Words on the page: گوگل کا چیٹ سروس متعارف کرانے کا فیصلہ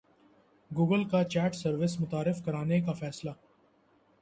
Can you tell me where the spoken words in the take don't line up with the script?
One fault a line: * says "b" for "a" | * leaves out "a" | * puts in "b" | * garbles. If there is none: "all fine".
all fine